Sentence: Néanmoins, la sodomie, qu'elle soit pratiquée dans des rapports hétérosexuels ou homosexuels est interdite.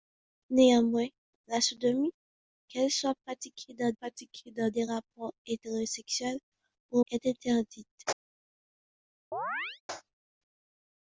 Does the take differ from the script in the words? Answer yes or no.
yes